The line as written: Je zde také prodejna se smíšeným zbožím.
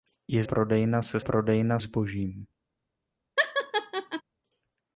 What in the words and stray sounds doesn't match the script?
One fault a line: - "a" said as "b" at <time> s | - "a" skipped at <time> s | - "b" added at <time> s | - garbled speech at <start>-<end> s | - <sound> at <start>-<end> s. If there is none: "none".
- "zde také" skipped at 0.4 s
- "smíšeným" said as "prodejna" at 1.2 s
- laugh at 3.4-4.2 s